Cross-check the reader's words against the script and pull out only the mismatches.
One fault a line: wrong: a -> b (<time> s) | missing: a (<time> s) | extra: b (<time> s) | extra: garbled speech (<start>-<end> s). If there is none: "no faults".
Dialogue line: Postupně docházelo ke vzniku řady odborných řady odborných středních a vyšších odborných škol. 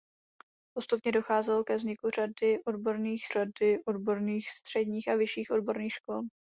no faults